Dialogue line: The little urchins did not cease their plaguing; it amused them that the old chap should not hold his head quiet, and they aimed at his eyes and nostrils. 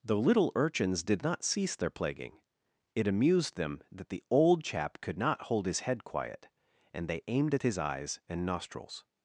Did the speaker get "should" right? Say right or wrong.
wrong